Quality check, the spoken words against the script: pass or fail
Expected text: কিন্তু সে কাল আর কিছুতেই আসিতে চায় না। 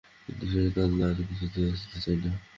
pass